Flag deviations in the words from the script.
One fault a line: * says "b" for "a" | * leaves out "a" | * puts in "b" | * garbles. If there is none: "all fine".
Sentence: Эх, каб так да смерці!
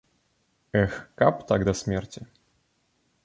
all fine